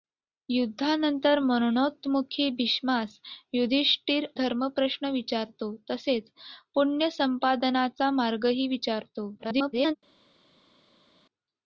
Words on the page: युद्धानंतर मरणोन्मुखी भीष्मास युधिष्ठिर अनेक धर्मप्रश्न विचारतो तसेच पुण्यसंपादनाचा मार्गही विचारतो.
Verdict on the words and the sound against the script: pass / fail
fail